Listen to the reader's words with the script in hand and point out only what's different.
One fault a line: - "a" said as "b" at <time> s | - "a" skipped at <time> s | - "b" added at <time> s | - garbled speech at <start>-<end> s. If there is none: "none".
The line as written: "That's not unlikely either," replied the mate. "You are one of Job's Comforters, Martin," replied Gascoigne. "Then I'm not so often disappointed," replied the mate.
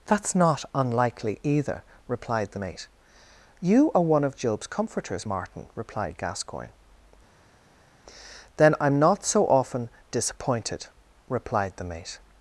none